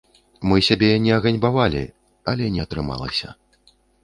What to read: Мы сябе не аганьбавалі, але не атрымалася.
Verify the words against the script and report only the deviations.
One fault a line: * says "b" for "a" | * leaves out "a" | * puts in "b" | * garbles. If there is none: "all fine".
all fine